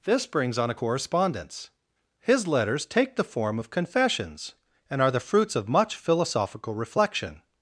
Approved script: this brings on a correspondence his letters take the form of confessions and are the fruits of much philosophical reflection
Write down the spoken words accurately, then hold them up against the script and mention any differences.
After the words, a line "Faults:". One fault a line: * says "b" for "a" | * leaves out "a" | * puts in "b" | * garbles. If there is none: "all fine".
this brings on a correspondence his letters take the form of confessions and are the fruits of much philosophical reflection
Faults:
all fine